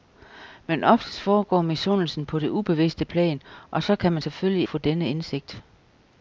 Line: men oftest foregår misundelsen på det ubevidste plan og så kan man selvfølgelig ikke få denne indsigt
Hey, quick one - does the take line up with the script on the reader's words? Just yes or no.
no